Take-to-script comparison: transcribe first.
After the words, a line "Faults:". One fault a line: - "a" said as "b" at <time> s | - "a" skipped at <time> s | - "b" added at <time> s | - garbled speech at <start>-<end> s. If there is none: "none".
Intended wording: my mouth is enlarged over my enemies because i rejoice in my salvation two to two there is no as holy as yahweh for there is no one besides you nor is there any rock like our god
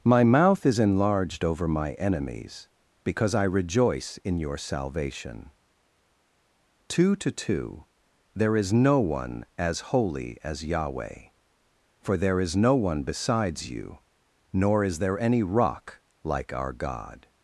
my mouth is enlarged over my enemies because i rejoice in your salvation two to two there is no one as holy as yahweh for there is no one besides you nor is there any rock like our god
Faults:
- "my" said as "your" at 4.4 s
- "one" added at 9.0 s